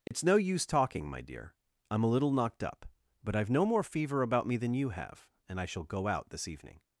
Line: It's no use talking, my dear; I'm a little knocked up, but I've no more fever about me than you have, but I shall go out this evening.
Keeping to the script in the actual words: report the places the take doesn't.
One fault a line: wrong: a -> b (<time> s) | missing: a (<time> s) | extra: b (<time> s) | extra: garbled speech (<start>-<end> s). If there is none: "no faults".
wrong: but -> and (5.5 s)